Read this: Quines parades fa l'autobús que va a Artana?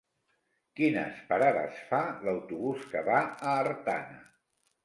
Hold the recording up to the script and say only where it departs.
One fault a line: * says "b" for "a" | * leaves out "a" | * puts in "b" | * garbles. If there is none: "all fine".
all fine